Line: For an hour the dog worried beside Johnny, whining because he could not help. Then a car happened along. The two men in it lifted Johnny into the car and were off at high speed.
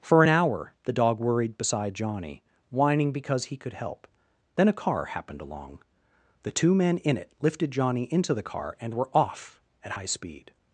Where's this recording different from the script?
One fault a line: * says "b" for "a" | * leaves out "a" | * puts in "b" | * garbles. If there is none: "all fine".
* leaves out "not"